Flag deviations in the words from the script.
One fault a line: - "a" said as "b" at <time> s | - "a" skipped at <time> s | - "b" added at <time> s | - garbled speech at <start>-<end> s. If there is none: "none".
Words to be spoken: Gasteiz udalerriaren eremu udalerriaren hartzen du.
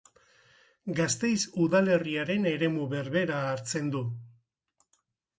- "udalerriaren" said as "berbera" at 2.9 s